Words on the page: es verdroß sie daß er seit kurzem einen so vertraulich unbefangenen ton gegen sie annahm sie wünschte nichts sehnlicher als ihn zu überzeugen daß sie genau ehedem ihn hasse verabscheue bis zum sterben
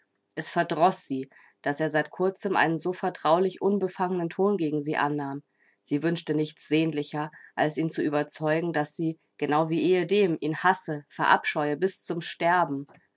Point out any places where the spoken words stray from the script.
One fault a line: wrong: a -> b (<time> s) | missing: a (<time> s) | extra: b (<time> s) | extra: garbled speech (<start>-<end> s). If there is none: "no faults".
extra: wie (9.7 s)